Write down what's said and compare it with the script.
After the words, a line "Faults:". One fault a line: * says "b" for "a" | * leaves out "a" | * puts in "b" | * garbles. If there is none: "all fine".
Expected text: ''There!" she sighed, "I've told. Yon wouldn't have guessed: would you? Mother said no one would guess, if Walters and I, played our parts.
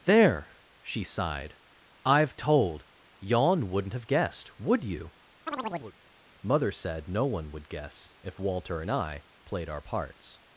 ''There!" she sighed, "I've told. Yon wouldn't have guessed: would you? Mother said no one would guess, if Walter and I, played our parts.
Faults:
* says "Walter" for "Walters"